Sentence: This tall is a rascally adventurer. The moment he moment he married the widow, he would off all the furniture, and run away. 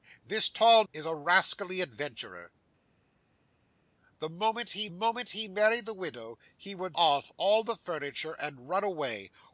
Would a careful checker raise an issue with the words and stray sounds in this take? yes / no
no